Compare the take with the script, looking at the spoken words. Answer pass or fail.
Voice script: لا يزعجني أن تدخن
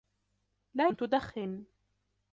fail